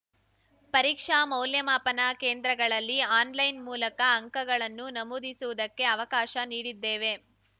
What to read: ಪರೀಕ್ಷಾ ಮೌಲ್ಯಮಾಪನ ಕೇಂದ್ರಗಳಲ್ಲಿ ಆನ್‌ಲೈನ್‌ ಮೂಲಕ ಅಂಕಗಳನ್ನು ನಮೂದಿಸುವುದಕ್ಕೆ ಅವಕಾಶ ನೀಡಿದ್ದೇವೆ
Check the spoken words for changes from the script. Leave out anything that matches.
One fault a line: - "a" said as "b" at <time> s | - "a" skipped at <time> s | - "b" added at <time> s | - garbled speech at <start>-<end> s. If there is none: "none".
none